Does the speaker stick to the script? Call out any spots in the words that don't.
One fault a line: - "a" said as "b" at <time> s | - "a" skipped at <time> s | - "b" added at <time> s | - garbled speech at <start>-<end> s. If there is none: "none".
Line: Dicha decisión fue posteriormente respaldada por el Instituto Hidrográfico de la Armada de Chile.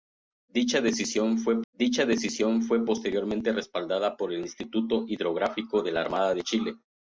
- "dicha decisión fue" added at 1.7 s